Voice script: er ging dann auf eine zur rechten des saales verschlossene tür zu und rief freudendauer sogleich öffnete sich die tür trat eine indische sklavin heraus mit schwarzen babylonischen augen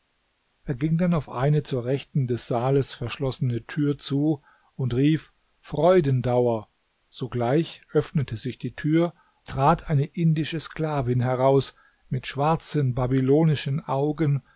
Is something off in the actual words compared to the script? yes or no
no